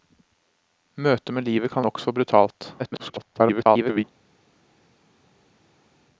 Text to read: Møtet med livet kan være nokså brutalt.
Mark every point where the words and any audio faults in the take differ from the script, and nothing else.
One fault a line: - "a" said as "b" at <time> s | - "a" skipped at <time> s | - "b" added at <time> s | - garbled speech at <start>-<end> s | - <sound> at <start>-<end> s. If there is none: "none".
- "være" skipped at 1.9 s
- garbled speech at 2.8-4.0 s